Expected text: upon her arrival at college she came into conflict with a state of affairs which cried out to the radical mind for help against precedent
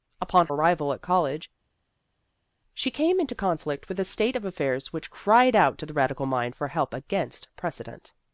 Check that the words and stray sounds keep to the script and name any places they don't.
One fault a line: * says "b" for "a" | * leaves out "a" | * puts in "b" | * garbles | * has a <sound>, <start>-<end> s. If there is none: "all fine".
* leaves out "her"